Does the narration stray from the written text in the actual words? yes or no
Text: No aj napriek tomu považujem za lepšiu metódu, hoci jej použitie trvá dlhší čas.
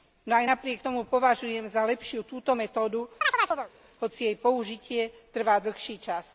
yes